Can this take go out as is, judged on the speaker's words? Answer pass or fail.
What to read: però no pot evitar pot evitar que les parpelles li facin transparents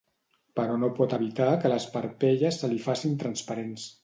fail